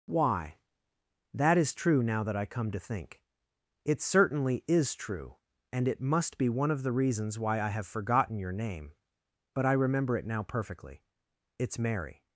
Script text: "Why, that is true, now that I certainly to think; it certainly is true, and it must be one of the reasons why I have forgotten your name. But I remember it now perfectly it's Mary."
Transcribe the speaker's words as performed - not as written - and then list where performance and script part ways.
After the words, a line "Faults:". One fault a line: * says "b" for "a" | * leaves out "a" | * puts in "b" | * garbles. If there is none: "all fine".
"Why, that is true, now that I come to think; it certainly is true, and it must be one of the reasons why I have forgotten your name. But I remember it now perfectly it's Mary."
Faults:
* says "come" for "certainly"